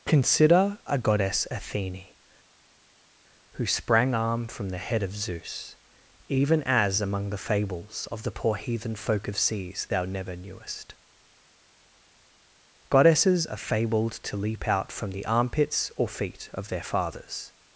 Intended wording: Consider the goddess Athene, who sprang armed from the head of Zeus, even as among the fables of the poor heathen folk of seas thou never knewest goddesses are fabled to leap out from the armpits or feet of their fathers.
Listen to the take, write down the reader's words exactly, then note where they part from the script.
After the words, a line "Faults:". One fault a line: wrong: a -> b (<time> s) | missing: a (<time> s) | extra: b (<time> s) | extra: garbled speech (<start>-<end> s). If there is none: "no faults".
Consider a goddess Athene, who sprang arm from the head of Zeus, even as among the fables of the poor heathen folk of seas thou never knewest goddesses are fabled to leap out from the armpits or feet of their fathers.
Faults:
wrong: the -> a (0.8 s)
wrong: armed -> arm (4.1 s)